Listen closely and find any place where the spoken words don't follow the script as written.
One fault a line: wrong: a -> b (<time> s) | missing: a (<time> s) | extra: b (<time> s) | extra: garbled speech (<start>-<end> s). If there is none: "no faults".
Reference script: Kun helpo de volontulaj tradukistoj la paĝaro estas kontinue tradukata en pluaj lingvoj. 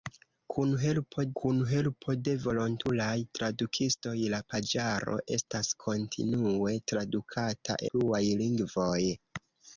extra: kun helpo (1.4 s)
missing: en (7.8 s)